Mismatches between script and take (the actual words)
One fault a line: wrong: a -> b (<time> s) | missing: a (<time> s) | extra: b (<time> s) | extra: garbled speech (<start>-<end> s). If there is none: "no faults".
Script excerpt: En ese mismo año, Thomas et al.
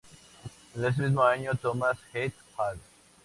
no faults